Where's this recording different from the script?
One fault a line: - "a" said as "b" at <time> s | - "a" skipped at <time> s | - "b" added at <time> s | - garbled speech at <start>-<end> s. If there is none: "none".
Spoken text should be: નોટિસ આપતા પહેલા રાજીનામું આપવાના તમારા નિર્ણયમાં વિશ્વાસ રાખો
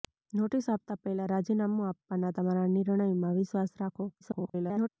- garbled speech at 4.2-4.9 s